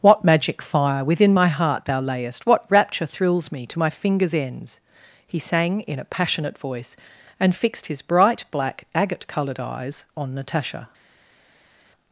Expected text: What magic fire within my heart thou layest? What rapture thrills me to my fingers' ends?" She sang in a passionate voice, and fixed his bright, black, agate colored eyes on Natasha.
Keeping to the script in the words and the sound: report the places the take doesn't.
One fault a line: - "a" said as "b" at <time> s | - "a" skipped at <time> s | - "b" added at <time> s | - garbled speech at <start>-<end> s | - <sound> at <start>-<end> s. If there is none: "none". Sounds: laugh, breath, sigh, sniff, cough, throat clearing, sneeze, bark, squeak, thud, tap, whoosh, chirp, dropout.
- "She" said as "He" at 5.3 s